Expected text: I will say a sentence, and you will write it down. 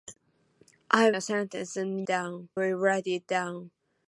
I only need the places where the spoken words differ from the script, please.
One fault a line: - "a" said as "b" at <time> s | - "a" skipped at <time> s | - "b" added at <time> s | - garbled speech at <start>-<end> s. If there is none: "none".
- "will say" skipped at 1.1 s
- "you" said as "down" at 2.1 s